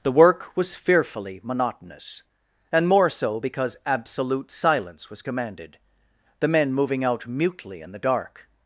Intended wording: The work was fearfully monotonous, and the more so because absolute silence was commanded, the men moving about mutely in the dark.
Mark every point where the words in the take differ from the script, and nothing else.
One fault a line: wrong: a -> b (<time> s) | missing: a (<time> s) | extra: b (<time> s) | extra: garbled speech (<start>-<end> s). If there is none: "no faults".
missing: the (2.9 s)
wrong: about -> out (7.0 s)